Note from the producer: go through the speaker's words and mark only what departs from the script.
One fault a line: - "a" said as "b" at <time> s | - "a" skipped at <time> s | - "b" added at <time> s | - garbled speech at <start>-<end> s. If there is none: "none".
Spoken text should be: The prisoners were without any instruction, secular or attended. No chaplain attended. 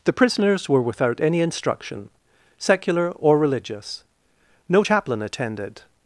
- "attended" said as "religious" at 3.4 s